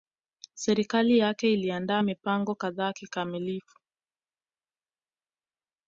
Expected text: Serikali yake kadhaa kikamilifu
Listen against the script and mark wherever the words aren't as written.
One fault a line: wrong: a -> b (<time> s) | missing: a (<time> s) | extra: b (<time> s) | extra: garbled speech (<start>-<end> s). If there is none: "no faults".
extra: iliandaa mipango (1.5 s)